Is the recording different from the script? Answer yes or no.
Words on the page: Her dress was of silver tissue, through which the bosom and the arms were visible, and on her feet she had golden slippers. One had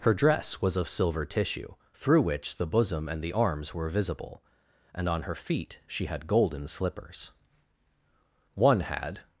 no